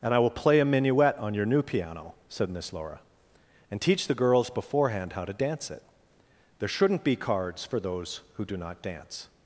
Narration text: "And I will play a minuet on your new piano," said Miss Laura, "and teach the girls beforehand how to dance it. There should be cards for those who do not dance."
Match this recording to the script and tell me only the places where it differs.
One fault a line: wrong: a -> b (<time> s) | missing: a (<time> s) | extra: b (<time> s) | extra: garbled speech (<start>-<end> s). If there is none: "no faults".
wrong: should -> shouldn't (6.7 s)